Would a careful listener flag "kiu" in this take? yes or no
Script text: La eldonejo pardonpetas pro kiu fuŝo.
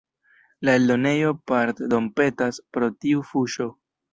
yes